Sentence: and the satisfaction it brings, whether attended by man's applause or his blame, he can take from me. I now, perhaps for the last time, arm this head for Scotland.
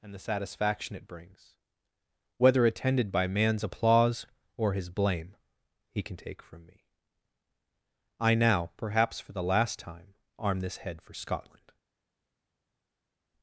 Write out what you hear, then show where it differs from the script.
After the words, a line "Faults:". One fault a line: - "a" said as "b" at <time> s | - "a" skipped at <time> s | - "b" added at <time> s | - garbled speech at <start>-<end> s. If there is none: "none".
and the satisfaction it brings, whether attended by man's applause or his blame, he can take from me. I now, perhaps for the last time, arm this head for Scotland.
Faults:
none